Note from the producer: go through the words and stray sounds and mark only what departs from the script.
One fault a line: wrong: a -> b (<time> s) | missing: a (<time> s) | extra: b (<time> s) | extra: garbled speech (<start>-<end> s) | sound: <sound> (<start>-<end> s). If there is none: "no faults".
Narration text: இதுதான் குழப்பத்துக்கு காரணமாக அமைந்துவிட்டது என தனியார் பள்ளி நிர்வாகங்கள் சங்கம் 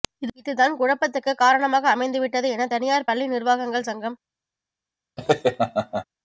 sound: laugh (5.2-6.0 s)